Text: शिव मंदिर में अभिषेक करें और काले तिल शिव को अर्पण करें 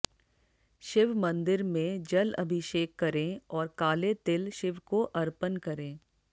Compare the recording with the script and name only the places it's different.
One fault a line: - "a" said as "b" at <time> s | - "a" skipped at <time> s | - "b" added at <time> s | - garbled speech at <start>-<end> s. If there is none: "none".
- "जल" added at 2.0 s